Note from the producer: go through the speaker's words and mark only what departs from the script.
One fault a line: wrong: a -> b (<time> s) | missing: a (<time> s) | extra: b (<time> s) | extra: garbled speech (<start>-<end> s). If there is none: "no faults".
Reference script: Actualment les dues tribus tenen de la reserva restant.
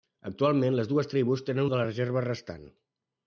no faults